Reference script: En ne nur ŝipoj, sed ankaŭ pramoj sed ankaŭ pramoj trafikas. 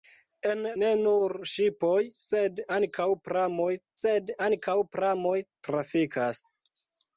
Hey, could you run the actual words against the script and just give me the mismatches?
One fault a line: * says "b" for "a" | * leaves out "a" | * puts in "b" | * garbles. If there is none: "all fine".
all fine